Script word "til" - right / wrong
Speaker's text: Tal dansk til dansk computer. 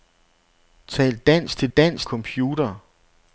right